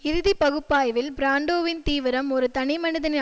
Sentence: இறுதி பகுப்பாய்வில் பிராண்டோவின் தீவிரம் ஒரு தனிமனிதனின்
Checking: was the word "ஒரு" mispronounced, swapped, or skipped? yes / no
no